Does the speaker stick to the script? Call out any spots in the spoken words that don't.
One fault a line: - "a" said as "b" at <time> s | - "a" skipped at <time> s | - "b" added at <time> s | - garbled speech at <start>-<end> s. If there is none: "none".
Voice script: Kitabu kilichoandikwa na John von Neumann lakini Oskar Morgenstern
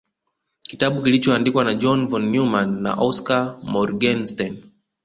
- "lakini" said as "na" at 2.8 s